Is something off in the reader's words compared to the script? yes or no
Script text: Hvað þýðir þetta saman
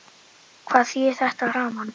no